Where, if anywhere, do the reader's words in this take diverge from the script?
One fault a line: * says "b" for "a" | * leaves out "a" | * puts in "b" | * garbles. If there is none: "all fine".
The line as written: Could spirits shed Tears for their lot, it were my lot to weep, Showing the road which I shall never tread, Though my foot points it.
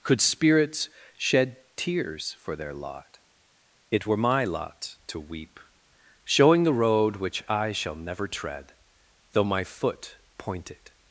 * says "point" for "points"